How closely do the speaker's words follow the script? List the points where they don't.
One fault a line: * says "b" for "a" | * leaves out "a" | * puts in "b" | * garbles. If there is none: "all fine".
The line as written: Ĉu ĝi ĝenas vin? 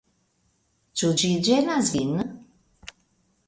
all fine